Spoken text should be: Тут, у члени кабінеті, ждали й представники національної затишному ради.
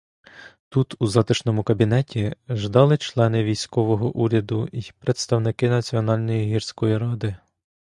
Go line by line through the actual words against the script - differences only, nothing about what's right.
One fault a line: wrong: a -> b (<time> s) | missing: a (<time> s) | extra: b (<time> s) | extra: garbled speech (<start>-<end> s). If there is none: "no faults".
wrong: члени -> затишному (1.1 s)
extra: члени військового уряду (3.0 s)
wrong: затишному -> гірської (6.5 s)